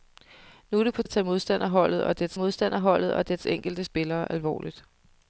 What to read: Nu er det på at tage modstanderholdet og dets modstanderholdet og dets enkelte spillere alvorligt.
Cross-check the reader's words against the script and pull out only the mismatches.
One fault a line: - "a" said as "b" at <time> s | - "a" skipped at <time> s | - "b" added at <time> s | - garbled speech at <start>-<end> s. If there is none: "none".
none